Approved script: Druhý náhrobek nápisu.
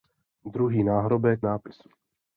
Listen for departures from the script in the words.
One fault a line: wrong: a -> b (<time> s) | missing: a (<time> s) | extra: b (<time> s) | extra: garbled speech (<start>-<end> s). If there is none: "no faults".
no faults